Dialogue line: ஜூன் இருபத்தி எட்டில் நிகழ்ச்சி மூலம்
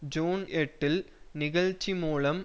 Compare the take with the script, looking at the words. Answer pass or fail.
fail